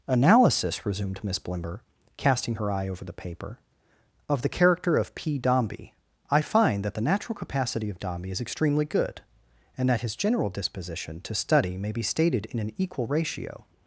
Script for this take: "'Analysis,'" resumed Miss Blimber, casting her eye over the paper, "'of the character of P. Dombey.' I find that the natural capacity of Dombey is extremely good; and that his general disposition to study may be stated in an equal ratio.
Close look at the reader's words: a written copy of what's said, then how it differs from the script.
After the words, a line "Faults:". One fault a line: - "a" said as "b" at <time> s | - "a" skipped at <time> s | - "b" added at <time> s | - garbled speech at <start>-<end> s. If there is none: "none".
"'Analysis,'" resumed Miss Blimber, casting her eye over the paper, "'of the character of P. Dombey.' I find that the natural capacity of Dombey is extremely good; and that his general disposition to study may be stated in an equal ratio.
Faults:
none